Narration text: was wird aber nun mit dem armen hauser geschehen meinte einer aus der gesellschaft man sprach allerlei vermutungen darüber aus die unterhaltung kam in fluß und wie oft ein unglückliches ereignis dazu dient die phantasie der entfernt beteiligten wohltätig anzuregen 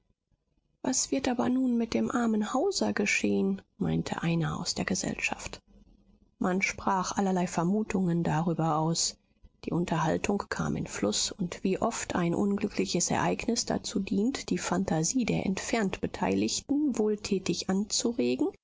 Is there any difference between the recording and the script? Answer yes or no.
no